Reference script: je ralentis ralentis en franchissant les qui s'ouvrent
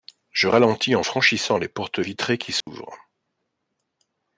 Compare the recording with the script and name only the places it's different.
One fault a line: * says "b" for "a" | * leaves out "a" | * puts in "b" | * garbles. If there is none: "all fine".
* leaves out "ralentis"
* puts in "portes vitrées"